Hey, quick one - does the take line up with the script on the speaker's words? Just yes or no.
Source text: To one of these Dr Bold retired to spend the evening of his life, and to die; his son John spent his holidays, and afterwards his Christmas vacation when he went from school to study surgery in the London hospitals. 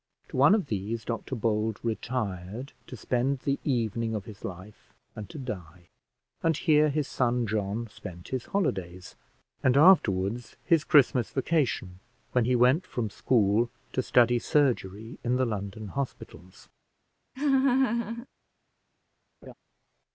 no